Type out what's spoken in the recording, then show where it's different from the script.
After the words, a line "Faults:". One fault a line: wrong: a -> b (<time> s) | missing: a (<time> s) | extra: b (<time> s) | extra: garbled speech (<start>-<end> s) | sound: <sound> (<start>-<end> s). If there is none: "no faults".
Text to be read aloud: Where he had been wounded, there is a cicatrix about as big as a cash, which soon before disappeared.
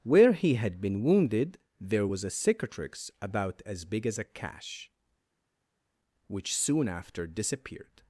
Where he had been wounded, there was a cicatrix about as big as a cash, which soon after disappeared.
Faults:
wrong: is -> was (2.0 s)
wrong: before -> after (6.9 s)